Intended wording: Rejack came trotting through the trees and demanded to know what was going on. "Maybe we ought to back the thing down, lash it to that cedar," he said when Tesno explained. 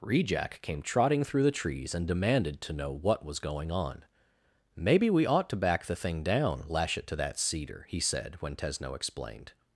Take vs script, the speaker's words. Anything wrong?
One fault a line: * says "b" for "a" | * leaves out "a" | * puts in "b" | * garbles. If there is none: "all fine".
all fine